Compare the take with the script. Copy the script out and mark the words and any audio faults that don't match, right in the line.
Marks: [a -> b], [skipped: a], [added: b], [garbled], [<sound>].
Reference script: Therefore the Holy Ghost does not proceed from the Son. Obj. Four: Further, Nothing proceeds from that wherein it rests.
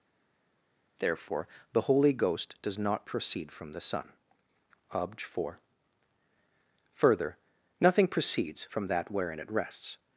Therefore the Holy Ghost does not proceed from the Son. Obj. Four: Further, Nothing proceeds from that wherein it rests.